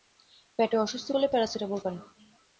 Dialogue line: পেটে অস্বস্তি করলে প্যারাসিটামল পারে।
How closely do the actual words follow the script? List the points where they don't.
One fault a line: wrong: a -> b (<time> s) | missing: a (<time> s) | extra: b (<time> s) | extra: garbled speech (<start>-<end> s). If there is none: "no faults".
no faults